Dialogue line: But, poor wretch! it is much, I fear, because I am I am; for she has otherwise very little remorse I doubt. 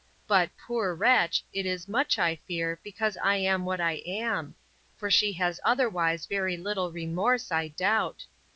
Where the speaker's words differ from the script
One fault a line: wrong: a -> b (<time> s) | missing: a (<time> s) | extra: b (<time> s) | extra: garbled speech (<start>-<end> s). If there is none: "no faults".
extra: what (3.6 s)